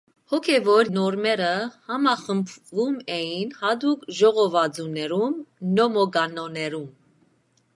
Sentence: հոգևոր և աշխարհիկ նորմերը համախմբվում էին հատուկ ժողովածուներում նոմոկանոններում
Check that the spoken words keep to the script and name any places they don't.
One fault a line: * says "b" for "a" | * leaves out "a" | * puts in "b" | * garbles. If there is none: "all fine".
* leaves out "և աշխարհիկ"